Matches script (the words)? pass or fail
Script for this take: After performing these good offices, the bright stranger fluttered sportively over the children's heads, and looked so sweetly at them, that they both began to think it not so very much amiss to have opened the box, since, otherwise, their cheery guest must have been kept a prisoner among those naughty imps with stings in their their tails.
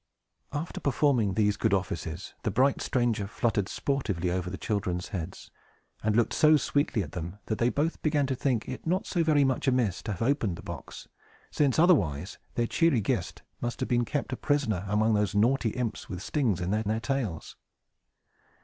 pass